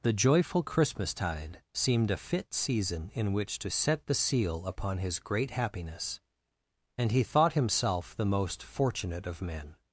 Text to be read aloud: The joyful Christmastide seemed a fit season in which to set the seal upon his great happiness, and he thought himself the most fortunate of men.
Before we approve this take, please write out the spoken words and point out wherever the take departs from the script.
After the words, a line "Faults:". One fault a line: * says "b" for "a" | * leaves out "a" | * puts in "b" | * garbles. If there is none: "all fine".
The joyful Christmastide seemed a fit season in which to set the seal upon his great happiness, and he thought himself the most fortunate of men.
Faults:
all fine